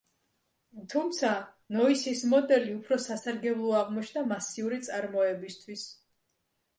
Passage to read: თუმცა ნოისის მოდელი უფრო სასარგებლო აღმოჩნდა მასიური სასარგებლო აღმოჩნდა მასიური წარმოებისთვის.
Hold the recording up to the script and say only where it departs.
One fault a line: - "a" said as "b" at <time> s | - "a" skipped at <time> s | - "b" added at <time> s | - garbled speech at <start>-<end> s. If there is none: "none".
- "სასარგებლო აღმოჩნდა მასიური" skipped at 4.8 s